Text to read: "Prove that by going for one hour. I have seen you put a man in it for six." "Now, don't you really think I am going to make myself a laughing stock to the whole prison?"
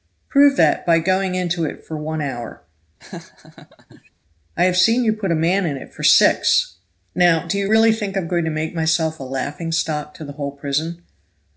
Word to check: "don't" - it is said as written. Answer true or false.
false